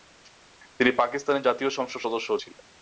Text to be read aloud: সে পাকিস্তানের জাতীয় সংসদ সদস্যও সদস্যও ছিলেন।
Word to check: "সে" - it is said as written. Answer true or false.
false